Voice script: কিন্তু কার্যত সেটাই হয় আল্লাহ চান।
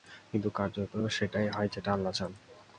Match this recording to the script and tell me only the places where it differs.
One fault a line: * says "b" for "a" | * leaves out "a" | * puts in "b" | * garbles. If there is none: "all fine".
* puts in "যেটা"